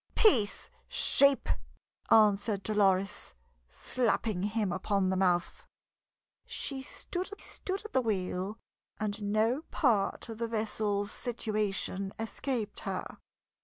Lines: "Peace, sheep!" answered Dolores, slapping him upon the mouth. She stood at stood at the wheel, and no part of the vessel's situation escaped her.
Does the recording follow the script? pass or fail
pass